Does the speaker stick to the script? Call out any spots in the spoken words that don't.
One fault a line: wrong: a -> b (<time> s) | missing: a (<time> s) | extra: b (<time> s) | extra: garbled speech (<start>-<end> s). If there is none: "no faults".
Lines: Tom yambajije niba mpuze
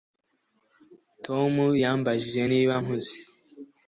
no faults